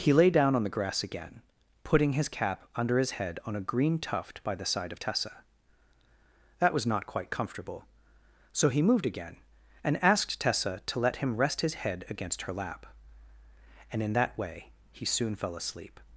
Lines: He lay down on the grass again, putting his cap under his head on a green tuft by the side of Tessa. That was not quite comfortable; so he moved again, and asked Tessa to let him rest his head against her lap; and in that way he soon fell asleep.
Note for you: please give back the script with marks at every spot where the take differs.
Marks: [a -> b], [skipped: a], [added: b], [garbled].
He lay down on the grass again, putting his cap under his head on a green tuft by the side of Tessa. That was not quite comfortable; so he moved again, and asked Tessa to let him rest his head against her lap; and in that way he soon fell asleep.